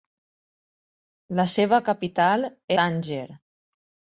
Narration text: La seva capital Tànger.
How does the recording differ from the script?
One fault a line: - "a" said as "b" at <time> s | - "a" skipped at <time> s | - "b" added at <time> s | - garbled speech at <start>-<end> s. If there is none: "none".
none